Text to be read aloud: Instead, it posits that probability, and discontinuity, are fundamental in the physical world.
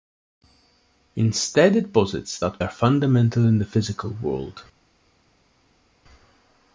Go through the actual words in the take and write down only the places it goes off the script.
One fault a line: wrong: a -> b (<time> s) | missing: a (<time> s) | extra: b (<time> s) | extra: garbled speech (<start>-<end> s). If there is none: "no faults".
missing: probability and discontinuity (2.6 s)